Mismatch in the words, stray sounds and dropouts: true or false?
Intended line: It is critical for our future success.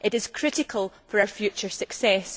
false